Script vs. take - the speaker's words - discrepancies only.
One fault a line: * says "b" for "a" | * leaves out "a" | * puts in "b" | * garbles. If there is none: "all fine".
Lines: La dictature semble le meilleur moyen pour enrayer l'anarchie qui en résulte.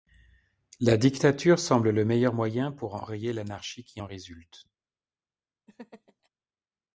all fine